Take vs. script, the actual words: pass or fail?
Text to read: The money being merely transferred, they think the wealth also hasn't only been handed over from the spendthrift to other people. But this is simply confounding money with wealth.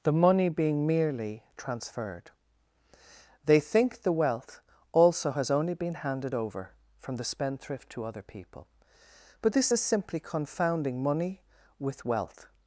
fail